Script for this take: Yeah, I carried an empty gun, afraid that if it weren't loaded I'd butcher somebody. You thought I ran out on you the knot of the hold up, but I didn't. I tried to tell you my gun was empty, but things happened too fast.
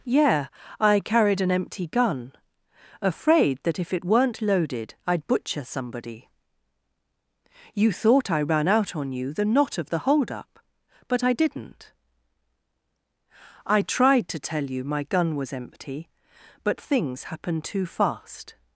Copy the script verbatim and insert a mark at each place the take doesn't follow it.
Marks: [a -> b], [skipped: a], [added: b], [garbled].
Yeah, I carried an empty gun, afraid that if it weren't loaded I'd butcher somebody. You thought I ran out on you the knot of the hold up, but I didn't. I tried to tell you my gun was empty, but things happened too fast.